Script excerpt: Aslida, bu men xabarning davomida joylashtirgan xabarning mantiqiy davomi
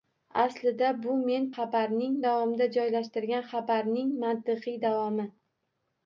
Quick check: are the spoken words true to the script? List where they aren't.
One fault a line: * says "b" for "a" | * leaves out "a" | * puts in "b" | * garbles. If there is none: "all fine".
all fine